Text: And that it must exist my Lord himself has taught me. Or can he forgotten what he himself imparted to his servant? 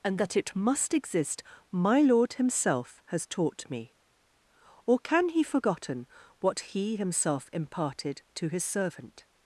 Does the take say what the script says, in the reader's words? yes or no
yes